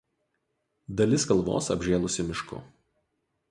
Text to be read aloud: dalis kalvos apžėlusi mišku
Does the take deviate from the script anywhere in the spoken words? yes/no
no